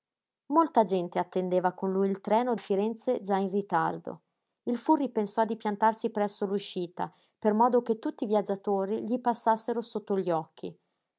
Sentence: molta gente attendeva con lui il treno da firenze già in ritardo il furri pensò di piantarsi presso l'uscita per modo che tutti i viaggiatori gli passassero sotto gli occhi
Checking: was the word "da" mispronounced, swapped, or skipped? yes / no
yes